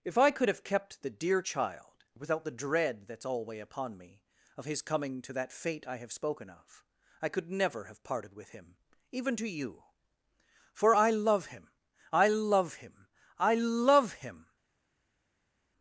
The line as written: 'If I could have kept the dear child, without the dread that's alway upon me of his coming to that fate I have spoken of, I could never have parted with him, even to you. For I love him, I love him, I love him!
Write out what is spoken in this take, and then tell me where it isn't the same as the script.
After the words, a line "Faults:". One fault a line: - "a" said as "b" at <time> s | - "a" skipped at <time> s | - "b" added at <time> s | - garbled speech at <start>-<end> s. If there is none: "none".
'If I could have kept the dear child, without the dread that's alway upon me of his coming to that fate I have spoken of, I could never have parted with him, even to you. For I love him, I love him, I love him!
Faults:
none